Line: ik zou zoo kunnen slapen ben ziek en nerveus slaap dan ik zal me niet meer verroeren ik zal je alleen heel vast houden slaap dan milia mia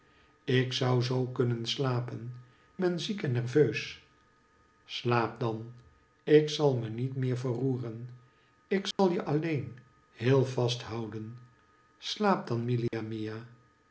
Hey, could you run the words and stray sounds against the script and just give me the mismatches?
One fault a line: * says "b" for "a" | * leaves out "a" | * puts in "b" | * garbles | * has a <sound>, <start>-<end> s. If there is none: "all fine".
* has a dropout, 8.9-9.0 s
* has a dropout, 12.9-12.9 s